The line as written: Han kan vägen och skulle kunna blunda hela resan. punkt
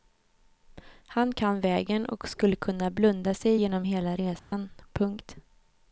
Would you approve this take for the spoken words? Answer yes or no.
no